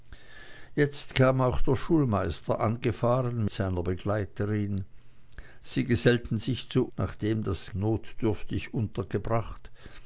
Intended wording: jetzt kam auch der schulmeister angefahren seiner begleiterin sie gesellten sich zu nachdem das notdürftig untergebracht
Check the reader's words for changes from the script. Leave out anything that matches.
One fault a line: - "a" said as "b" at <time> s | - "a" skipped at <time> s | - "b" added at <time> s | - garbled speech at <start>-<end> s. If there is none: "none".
none